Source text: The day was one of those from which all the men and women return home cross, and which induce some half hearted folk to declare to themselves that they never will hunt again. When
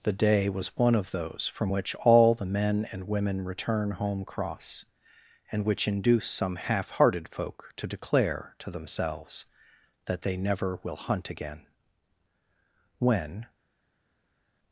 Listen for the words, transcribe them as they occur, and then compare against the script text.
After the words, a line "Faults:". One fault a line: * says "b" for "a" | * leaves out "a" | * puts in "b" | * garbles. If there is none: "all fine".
The day was one of those from which all the men and women return home cross, and which induce some half hearted folk to declare to themselves that they never will hunt again. When
Faults:
all fine